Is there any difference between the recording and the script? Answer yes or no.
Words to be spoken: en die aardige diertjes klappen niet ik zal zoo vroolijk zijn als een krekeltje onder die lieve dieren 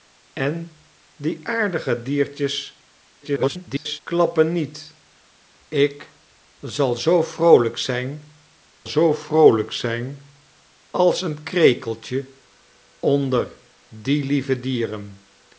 yes